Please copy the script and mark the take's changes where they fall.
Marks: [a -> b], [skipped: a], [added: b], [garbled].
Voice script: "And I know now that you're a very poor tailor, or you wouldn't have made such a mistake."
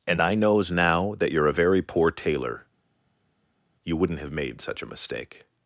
"And I [know -> knows] now that you're a very poor tailor, [skipped: or] you wouldn't have made such a mistake."